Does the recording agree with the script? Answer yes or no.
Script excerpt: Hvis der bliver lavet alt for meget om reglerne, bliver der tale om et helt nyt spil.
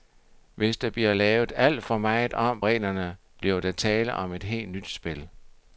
yes